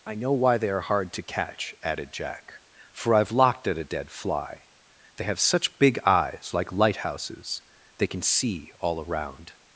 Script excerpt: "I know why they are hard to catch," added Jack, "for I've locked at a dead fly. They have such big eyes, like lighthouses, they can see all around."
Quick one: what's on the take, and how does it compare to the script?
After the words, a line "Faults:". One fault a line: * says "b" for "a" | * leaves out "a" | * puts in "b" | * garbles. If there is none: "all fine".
"I know why they are hard to catch," added Jack, "for I've locked at a dead fly. They have such big eyes, like lighthouses, they can see all around."
Faults:
all fine